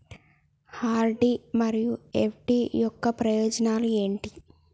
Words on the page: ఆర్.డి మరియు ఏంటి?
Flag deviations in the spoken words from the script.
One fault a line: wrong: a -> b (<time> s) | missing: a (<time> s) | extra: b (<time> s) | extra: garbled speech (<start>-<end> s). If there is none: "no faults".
extra: ఎఫ్.డి యొక్క ప్రయోజనాలు (2.1 s)